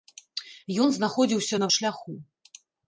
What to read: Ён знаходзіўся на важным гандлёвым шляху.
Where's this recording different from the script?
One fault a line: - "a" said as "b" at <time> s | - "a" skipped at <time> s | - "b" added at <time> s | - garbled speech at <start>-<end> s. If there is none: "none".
- "важным гандлёвым" skipped at 1.7 s